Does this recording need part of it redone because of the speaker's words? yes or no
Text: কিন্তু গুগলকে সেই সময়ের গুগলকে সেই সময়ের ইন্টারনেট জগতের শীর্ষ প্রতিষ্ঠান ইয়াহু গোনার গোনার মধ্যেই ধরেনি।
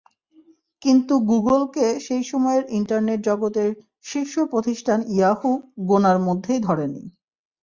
yes